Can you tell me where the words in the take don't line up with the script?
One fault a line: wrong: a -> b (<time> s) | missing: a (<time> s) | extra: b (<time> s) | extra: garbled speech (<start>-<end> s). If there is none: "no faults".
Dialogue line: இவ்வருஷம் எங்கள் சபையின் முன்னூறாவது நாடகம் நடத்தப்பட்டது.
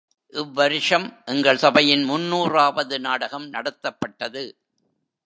no faults